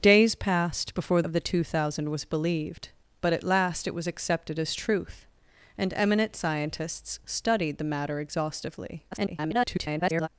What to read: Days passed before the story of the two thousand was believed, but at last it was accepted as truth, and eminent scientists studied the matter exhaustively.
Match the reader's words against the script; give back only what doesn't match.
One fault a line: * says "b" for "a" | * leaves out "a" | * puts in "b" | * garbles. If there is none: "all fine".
* leaves out "the story"
* garbles